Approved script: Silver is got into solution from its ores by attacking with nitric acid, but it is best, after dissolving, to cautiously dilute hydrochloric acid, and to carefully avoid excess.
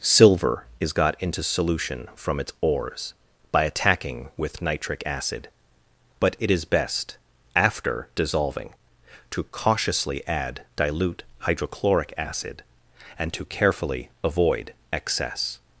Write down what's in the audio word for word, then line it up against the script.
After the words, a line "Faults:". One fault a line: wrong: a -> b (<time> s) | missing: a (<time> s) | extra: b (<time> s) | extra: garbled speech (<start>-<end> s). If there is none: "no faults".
Silver is got into solution from its ores by attacking with nitric acid, but it is best, after dissolving, to cautiously add dilute hydrochloric acid, and to carefully avoid excess.
Faults:
extra: add (10.3 s)